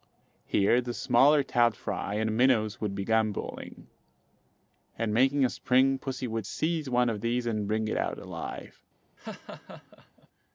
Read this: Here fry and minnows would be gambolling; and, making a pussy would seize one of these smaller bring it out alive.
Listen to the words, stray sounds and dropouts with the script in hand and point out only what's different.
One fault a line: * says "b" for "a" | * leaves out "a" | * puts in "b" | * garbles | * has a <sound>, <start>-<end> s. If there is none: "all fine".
* puts in "the smaller trout"
* puts in "spring"
* says "and" for "smaller"
* has a laugh, 9.2-10.3 s